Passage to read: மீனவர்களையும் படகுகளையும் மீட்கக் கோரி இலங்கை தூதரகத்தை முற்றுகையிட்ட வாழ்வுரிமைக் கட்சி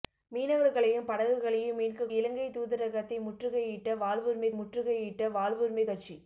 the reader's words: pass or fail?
fail